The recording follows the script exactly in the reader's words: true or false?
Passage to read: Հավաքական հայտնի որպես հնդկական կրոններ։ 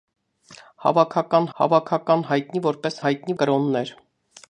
false